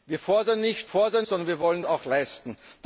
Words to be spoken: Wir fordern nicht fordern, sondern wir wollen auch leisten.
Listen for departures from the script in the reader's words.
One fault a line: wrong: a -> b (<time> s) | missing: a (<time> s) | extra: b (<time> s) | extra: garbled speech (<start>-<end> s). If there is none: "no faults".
no faults